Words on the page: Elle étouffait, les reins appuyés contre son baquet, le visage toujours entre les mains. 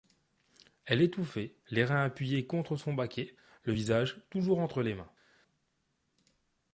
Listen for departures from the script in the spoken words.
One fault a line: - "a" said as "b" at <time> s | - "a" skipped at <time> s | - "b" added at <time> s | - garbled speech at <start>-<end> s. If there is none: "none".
none